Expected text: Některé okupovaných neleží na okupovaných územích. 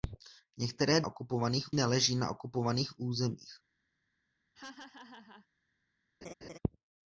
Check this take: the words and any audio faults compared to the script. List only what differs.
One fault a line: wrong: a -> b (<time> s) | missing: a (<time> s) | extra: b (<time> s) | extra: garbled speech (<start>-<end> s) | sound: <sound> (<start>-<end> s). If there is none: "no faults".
sound: laugh (4.5-5.5 s)
sound: laugh (6.2-6.6 s)